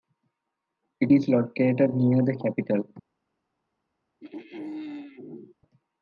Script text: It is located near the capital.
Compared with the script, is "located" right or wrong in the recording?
right